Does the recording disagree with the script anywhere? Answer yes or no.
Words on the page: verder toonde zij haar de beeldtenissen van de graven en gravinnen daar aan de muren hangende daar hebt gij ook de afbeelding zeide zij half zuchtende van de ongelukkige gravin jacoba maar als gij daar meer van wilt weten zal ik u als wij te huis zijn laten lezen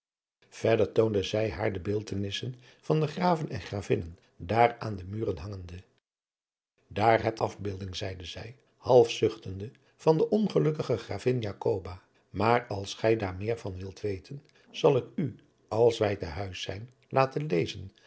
yes